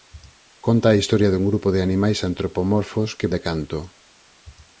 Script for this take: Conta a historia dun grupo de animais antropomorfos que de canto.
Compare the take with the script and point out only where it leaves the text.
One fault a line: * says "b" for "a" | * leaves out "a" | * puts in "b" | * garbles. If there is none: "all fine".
all fine